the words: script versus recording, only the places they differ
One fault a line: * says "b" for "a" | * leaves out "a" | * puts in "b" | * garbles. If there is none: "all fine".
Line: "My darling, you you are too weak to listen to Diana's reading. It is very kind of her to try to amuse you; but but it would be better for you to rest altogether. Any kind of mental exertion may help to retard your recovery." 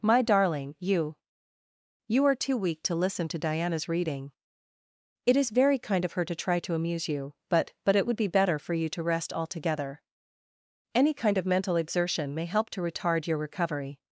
all fine